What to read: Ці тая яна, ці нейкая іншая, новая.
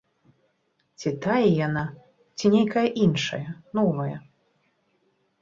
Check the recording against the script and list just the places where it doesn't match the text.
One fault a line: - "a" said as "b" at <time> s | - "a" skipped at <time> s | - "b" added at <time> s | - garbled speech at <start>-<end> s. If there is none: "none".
none